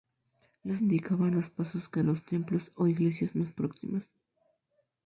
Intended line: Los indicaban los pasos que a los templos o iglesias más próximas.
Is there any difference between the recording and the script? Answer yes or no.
no